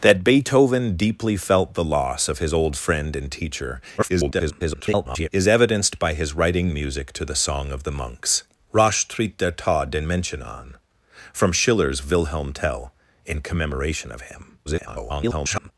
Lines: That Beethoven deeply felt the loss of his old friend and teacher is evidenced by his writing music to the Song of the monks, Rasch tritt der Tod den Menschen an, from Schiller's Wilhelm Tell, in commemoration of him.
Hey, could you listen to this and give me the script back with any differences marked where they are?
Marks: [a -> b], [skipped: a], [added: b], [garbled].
That Beethoven deeply felt the loss of his old friend and teacher [garbled] is evidenced by his writing music to the Song of the monks, Rasch tritt der Tod den Menschen an, from Schiller's Wilhelm Tell, in commemoration of him. [garbled]